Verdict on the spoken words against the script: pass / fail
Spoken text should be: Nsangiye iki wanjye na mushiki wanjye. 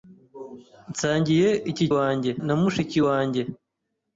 pass